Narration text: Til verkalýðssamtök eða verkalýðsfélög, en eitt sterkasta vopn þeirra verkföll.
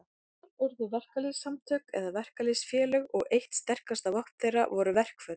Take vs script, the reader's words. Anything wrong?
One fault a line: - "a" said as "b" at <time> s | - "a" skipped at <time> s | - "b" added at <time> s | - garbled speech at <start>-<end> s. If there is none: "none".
- "urðu" added at 0.7 s
- "en" said as "og" at 3.2 s
- "voru" added at 4.7 s